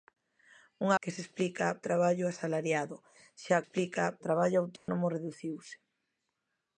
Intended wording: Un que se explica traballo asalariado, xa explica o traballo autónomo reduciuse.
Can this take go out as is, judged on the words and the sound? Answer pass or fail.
fail